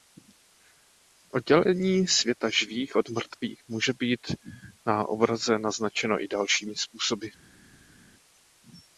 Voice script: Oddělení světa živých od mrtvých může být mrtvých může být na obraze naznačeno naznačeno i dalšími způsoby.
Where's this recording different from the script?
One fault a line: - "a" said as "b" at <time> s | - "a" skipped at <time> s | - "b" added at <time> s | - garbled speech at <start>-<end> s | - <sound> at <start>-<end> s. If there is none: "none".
- "mrtvých může být" skipped at 4.2 s
- "naznačeno" skipped at 6.2 s